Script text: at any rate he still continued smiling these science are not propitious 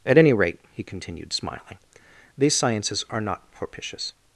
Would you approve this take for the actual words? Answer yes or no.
no